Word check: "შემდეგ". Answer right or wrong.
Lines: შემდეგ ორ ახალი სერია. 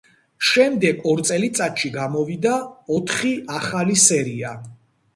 right